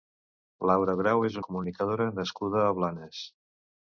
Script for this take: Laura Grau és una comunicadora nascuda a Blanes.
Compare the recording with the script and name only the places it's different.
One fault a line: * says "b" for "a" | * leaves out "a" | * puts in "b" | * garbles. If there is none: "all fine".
* leaves out "una"